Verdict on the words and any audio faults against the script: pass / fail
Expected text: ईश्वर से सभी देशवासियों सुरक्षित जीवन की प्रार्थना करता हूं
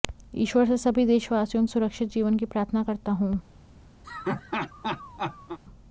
fail